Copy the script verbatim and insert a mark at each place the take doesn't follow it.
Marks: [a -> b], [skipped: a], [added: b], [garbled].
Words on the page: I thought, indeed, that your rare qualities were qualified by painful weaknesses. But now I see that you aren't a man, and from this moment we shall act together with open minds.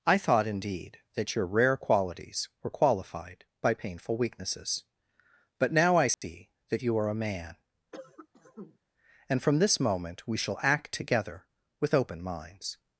I thought, indeed, that your rare qualities were qualified by painful weaknesses. But now I see that you [aren't -> are] a man, and from this moment we shall act together with open minds.